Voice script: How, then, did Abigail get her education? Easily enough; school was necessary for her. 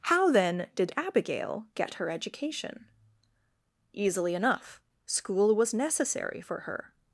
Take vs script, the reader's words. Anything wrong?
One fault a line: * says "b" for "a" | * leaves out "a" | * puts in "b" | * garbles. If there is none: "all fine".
all fine